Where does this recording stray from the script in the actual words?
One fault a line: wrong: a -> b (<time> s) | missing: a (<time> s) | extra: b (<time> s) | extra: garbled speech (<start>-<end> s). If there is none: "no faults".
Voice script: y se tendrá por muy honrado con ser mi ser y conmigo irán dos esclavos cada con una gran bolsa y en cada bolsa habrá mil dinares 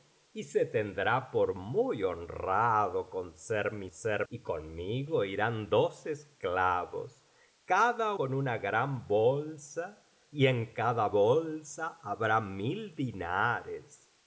no faults